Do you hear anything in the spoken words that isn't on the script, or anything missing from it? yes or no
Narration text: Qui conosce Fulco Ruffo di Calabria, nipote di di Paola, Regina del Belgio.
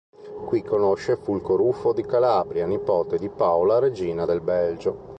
yes